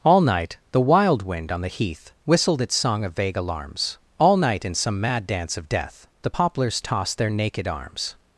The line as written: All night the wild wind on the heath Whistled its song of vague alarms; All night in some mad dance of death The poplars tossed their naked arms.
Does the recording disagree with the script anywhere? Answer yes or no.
no